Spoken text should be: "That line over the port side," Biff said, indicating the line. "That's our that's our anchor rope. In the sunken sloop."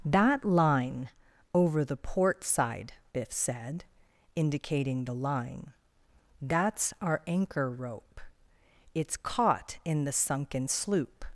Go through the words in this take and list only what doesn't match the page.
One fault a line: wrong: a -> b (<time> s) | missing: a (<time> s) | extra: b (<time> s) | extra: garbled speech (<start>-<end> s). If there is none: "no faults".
wrong: that's our anchor rope -> anchor rope It's caught (7.3 s)